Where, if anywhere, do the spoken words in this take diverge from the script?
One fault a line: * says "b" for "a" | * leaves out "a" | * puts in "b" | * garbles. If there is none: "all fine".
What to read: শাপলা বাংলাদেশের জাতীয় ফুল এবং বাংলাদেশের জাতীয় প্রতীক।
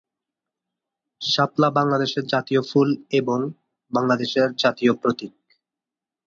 all fine